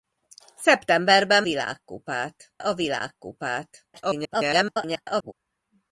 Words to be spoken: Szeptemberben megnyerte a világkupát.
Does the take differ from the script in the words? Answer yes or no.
yes